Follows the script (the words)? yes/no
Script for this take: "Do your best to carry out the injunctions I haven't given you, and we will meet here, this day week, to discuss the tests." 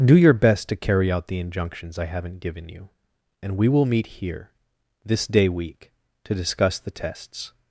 yes